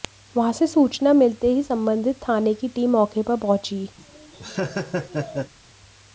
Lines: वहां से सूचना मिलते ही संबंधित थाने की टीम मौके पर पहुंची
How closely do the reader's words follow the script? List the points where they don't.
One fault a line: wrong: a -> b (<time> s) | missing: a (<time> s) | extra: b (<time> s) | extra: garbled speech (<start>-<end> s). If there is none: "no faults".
no faults